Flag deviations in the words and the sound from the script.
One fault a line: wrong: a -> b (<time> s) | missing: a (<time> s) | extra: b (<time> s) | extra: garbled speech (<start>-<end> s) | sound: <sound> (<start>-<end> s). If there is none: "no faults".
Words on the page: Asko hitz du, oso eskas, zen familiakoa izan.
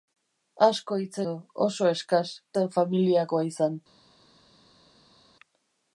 no faults